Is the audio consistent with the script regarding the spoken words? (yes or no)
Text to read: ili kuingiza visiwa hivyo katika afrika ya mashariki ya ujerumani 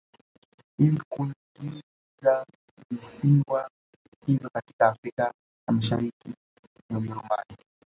yes